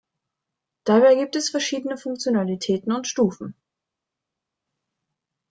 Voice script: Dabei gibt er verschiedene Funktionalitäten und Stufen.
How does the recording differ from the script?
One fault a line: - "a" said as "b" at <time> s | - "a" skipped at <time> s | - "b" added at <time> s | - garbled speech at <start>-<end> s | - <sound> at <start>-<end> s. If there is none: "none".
- "er" said as "es" at 1.4 s